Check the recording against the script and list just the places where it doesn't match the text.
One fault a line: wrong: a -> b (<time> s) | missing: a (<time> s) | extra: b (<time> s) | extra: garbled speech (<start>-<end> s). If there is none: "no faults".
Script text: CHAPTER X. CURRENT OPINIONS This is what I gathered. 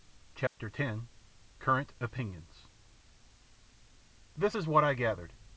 no faults